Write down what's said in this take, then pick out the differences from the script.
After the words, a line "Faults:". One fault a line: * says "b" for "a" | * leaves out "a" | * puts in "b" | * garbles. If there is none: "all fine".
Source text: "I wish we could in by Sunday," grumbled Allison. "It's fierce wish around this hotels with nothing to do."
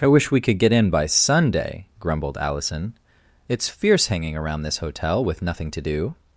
"I wish we could get in by Sunday," grumbled Allison. "It's fierce hanging around this hotel with nothing to do."
Faults:
* puts in "get"
* says "hanging" for "wish"
* says "hotel" for "hotels"